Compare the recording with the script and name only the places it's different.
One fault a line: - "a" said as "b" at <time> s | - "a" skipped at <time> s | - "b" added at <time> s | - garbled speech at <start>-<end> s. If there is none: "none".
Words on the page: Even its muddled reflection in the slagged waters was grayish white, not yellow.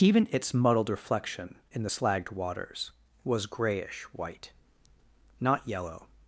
none